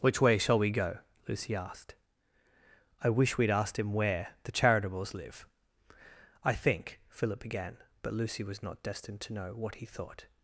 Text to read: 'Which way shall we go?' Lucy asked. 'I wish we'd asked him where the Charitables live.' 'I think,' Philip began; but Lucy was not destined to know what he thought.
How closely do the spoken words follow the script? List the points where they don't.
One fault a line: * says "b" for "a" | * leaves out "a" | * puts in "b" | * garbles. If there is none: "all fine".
all fine